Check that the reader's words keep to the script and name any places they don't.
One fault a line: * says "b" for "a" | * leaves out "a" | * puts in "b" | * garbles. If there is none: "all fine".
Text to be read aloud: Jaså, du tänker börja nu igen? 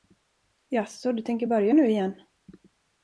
all fine